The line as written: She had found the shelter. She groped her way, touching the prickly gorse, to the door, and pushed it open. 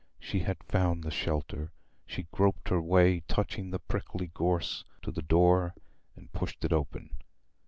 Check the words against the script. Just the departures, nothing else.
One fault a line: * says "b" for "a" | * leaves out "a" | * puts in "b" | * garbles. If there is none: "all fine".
all fine